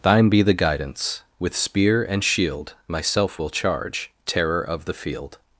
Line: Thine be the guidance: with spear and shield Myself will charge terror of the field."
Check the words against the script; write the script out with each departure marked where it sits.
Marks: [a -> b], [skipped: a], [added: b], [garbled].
Thine be the guidance: with spear and shield Myself will charge terror of the field."